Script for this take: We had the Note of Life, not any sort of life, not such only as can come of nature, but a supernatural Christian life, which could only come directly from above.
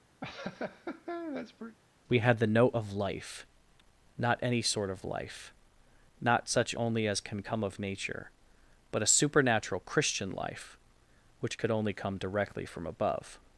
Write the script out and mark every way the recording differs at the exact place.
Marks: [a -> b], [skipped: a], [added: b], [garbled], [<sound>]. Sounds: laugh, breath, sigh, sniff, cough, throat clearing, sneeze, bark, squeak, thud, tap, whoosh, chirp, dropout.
[laugh] We had the Note of Life, not any sort of life, not such only as can come of nature, but a supernatural Christian life, which could only come directly from above.